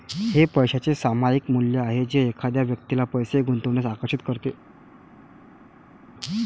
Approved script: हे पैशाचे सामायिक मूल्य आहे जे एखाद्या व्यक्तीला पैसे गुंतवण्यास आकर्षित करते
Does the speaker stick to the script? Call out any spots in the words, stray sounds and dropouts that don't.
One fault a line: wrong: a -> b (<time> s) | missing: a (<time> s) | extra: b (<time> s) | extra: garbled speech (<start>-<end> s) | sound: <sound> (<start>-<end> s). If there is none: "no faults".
no faults